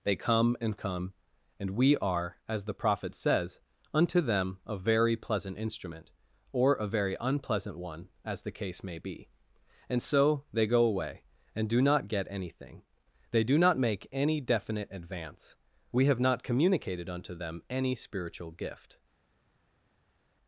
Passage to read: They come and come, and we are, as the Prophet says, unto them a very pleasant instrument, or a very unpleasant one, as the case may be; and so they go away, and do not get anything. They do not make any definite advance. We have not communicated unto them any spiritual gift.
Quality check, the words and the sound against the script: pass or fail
pass